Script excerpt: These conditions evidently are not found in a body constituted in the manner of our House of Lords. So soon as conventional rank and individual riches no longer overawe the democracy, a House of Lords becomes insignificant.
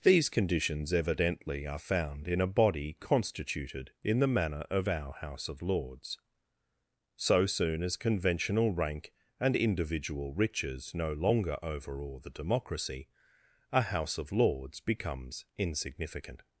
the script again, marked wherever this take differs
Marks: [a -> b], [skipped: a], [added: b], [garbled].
These conditions evidently are [skipped: not] found in a body constituted in the manner of our House of Lords. So soon as conventional rank and individual riches no longer overawe the democracy, a House of Lords becomes insignificant.